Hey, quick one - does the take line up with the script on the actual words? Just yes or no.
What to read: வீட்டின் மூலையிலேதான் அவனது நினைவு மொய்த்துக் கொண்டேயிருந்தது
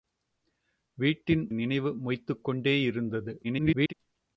no